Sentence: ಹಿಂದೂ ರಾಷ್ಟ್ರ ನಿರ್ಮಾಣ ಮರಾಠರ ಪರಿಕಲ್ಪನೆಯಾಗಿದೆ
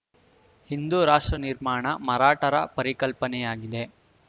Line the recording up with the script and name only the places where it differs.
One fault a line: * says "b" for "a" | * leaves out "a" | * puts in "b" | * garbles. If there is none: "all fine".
all fine